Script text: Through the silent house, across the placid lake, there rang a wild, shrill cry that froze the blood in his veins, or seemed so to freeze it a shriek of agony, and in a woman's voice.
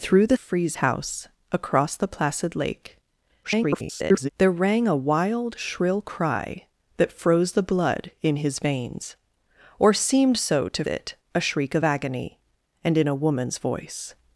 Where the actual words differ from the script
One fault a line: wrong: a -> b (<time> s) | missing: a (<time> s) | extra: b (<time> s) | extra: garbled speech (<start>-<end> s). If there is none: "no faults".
wrong: silent -> freeze (0.3 s)
extra: garbled speech (3.4-4.3 s)
missing: freeze (10.8 s)